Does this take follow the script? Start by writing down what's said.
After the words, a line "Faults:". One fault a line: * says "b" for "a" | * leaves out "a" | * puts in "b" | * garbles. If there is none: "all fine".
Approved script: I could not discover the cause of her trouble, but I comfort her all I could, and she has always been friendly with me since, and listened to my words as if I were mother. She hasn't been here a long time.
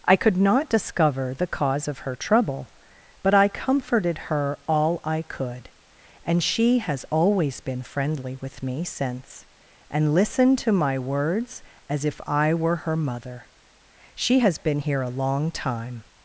I could not discover the cause of her trouble, but I comforted her all I could, and she has always been friendly with me since, and listened to my words as if I were her mother. She has been here a long time.
Faults:
* says "comforted" for "comfort"
* puts in "her"
* says "has" for "hasn't"